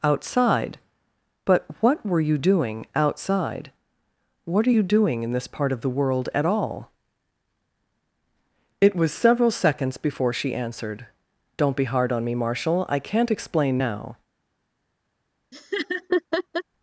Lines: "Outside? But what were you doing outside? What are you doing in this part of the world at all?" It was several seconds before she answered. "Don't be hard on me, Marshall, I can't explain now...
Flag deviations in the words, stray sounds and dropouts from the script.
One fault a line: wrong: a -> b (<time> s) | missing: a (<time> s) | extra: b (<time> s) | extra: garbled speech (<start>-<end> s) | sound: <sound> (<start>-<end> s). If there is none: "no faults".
sound: laugh (15.5-16.6 s)